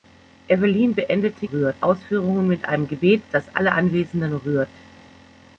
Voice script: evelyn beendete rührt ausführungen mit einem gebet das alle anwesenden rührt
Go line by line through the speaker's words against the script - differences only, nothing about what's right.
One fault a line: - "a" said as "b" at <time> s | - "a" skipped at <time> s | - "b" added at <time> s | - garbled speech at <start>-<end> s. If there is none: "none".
none